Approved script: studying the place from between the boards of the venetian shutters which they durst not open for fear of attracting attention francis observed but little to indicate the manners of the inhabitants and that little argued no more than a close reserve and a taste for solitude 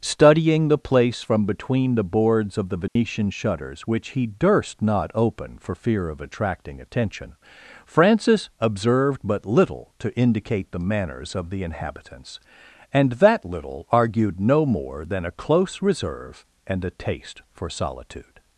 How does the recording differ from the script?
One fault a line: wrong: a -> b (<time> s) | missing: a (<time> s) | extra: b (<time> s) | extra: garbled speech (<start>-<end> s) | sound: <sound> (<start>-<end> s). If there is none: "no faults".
sound: dropout (2.9-3.0 s)
wrong: they -> he (4.1 s)